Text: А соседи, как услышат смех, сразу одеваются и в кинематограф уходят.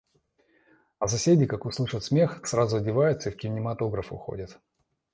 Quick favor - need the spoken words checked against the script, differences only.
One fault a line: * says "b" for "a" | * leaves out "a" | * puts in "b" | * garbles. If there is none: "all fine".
all fine